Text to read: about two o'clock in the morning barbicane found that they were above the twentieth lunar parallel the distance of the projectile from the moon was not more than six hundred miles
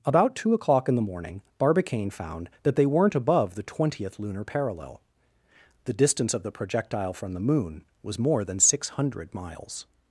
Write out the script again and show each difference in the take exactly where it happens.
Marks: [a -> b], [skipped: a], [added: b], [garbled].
about two o'clock in the morning barbicane found that they [were -> weren't] above the twentieth lunar parallel the distance of the projectile from the moon was [skipped: not] more than six hundred miles